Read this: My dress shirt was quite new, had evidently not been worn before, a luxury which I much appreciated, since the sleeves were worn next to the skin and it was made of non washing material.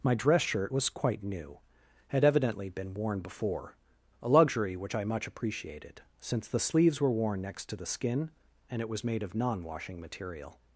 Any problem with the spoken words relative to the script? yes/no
yes